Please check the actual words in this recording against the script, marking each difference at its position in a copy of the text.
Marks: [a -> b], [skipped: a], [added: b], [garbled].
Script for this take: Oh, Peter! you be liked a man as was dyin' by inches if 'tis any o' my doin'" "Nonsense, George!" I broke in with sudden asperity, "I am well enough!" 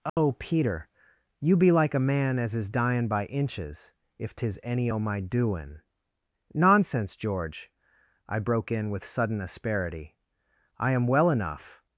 Oh, Peter! you be [liked -> like] a man as [was -> is] dyin' by inches if 'tis any o' my doin'" "Nonsense, George!" I broke in with sudden asperity, "I am well enough!"